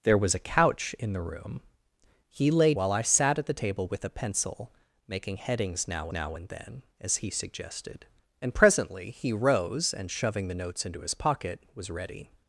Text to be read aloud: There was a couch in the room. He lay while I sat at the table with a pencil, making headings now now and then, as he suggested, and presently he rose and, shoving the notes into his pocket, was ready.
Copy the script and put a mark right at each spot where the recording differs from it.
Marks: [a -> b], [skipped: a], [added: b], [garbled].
There was a couch in the room. He lay while I sat at the table with a pencil, making headings now now and then, as he suggested, and presently he rose and, shoving the notes into his pocket, was ready.